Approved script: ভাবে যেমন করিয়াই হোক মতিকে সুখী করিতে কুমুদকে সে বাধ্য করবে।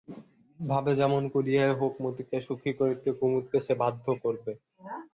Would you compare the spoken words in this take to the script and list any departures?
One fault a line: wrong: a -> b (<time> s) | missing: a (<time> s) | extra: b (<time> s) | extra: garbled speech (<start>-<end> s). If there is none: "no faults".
no faults